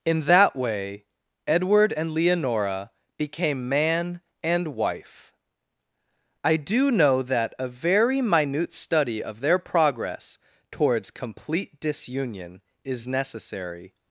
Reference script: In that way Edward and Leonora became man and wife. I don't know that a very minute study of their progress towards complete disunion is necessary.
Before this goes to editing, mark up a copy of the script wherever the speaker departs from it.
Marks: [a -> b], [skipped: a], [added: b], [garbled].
In that way Edward and Leonora became man and wife. I [don't -> do] know that a very minute study of their progress towards complete disunion is necessary.